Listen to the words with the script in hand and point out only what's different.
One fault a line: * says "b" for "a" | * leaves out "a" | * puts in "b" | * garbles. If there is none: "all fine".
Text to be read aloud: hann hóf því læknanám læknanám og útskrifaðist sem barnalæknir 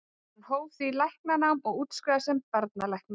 * leaves out "læknanám"